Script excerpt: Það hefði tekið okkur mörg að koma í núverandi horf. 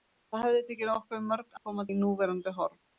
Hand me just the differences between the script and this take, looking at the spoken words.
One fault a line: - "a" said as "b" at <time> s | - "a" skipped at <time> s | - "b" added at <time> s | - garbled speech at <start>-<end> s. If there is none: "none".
none